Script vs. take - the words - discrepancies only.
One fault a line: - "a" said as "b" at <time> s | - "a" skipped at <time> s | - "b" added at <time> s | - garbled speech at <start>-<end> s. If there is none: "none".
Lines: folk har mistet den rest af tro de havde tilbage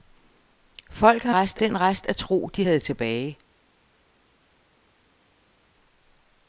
- "mistet" said as "rest" at 1.3 s